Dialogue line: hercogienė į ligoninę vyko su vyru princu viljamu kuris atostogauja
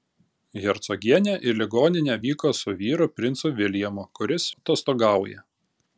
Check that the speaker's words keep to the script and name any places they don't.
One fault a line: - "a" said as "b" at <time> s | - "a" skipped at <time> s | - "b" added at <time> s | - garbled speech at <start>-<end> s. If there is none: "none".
none